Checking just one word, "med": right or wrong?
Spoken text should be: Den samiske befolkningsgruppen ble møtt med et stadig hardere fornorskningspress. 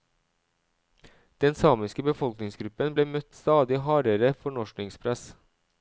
wrong